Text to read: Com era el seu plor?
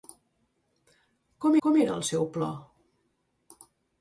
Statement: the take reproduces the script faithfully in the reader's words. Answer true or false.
false